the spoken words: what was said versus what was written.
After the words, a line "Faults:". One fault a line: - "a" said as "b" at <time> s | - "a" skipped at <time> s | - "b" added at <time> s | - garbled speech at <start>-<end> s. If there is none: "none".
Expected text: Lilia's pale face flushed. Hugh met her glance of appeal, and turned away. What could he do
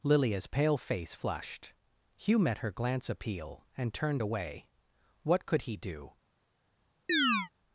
Lilia's pale face flushed. Hugh met her glance appeal, and turned away. What could he do
Faults:
- "of" skipped at 3.1 s